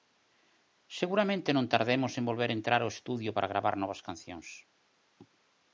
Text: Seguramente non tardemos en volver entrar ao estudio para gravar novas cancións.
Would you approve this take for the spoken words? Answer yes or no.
yes